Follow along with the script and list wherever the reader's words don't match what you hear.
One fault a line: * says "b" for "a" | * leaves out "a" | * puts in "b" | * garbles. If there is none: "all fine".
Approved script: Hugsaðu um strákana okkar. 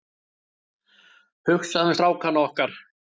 all fine